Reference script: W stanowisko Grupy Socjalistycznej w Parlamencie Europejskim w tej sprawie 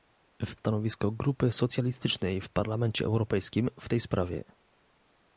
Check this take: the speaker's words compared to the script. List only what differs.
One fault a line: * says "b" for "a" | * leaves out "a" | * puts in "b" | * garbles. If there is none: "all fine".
all fine